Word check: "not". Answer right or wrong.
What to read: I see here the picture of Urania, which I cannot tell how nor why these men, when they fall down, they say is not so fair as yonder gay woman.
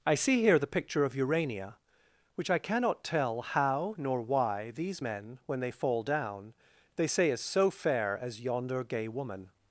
wrong